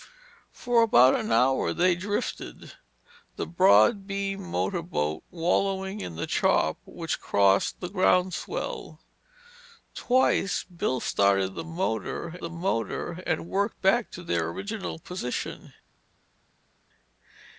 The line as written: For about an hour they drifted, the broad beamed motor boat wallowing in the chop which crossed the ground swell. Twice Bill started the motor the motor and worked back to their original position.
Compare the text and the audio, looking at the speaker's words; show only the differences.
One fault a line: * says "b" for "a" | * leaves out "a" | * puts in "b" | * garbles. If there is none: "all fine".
all fine